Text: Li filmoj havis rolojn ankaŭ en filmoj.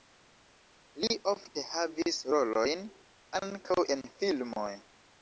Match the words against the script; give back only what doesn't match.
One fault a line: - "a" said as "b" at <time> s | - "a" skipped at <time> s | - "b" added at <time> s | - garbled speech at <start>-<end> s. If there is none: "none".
- "filmoj" said as "ofte" at 1.3 s